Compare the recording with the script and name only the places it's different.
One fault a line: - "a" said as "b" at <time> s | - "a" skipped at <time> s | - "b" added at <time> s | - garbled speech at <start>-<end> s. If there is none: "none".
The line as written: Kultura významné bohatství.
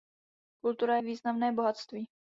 none